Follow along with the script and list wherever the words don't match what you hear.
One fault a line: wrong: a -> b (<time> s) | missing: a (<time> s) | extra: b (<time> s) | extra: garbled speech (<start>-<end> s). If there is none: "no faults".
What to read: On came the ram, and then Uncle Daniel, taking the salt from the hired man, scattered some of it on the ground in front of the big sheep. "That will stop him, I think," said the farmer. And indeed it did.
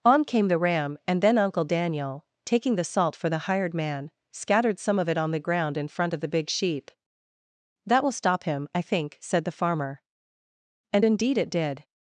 wrong: from -> for (3.1 s)